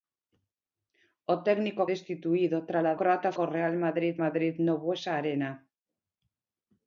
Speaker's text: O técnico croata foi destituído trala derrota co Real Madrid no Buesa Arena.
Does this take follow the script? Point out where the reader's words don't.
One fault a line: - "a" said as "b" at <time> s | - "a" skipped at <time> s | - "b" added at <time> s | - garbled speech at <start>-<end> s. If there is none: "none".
- "croata foi" skipped at 1.8 s
- "derrota" said as "croata" at 3.0 s
- "Madrid" added at 4.2 s